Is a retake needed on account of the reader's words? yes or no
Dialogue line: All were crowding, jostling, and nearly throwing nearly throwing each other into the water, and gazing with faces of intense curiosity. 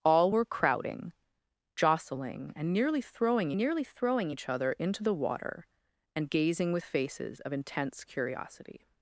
no